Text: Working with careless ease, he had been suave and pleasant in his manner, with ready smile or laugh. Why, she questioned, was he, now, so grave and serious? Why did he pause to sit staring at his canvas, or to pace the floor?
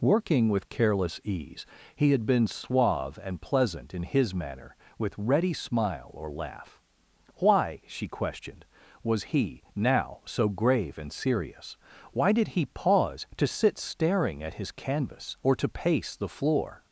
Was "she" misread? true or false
false